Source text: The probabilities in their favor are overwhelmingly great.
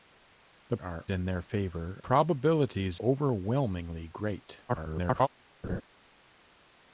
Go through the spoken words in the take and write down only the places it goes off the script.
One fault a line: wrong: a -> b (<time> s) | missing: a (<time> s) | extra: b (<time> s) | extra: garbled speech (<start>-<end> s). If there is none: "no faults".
wrong: probabilities -> are (0.8 s)
wrong: are -> probabilities (2.0 s)
extra: garbled speech (4.7-5.3 s)